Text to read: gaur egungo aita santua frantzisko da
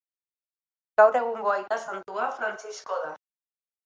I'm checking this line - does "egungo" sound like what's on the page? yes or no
yes